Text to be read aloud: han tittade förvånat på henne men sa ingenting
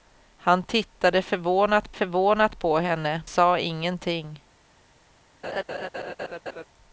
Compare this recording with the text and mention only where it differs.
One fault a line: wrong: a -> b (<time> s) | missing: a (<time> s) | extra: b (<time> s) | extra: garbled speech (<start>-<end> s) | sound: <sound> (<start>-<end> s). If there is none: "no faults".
extra: förvånat (1.9 s)
missing: men (3.2 s)
sound: laugh (5.4-6.7 s)